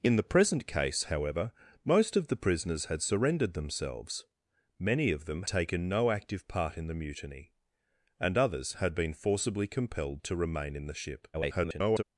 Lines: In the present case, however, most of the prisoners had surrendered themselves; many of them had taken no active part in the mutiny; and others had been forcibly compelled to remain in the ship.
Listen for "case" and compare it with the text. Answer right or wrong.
right